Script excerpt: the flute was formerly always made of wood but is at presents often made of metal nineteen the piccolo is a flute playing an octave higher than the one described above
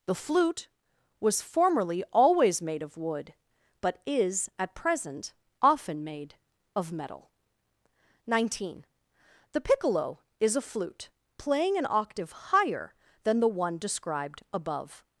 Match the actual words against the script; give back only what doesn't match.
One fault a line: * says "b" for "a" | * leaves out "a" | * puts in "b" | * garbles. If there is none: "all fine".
* says "present" for "presents"